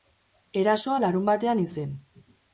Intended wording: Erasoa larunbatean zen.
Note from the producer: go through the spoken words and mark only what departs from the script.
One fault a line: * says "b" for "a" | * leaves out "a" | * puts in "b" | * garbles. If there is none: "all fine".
all fine